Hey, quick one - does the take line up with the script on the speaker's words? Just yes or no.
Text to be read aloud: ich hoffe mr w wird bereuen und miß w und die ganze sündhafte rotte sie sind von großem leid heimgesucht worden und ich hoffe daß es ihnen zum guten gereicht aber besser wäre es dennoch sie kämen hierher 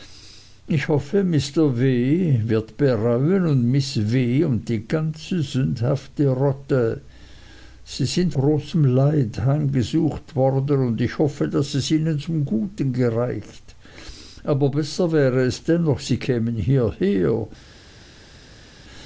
no